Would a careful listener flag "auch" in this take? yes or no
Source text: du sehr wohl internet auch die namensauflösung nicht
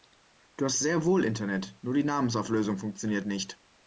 yes